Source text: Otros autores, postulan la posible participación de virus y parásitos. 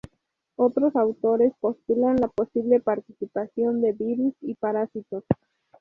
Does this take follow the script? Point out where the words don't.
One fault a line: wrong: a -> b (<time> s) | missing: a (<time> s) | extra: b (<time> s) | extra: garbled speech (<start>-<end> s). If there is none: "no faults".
no faults